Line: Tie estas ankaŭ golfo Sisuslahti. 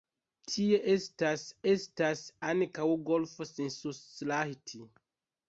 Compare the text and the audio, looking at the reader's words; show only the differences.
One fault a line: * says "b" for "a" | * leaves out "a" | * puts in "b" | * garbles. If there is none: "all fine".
* puts in "estas"